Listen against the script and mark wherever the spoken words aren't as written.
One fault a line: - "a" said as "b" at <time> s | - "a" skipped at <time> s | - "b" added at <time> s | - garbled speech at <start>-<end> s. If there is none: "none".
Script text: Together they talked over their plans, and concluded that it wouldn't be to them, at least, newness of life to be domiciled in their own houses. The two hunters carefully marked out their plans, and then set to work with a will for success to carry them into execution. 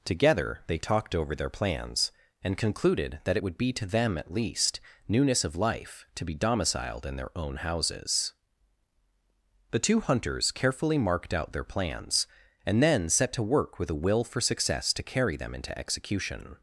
- "wouldn't" said as "would" at 3.4 s